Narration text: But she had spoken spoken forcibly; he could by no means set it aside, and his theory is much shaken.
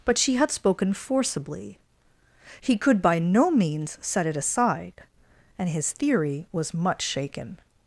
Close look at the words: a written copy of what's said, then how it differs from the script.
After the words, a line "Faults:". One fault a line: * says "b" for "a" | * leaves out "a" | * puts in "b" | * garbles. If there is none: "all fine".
But she had spoken forcibly; he could by no means set it aside, and his theory was much shaken.
Faults:
* leaves out "spoken"
* says "was" for "is"